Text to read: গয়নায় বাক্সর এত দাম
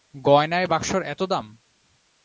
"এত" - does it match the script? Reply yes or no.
yes